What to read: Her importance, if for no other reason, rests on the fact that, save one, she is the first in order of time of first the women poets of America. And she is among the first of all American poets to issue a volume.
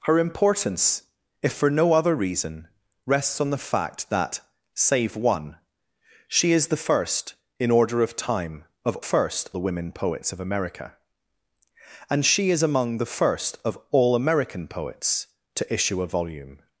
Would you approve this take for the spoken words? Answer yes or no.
yes